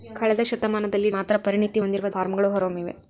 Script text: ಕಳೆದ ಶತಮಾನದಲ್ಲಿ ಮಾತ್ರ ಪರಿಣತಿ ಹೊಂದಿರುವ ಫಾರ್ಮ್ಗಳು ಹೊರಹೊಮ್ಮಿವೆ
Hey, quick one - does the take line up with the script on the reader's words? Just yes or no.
yes